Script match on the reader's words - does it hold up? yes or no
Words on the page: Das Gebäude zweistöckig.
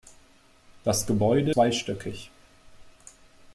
yes